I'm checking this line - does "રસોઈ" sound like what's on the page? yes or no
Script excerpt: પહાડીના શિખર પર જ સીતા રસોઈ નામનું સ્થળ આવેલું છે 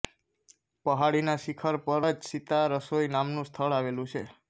yes